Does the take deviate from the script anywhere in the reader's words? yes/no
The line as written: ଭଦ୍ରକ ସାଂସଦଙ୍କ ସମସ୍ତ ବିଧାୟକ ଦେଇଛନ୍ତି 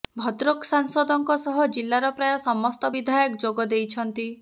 yes